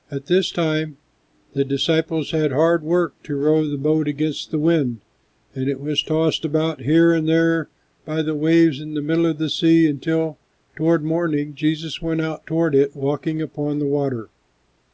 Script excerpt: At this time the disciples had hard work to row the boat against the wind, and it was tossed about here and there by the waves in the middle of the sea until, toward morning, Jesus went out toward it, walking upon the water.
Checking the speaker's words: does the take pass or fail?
pass